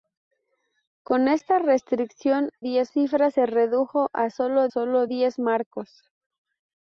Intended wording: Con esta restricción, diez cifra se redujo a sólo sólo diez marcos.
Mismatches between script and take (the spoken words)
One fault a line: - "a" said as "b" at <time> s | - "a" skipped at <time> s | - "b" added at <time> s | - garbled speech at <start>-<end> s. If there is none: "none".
none